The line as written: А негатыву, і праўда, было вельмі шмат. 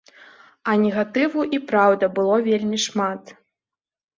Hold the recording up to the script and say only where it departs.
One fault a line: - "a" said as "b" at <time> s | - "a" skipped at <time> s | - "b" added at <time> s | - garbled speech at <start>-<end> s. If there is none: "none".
none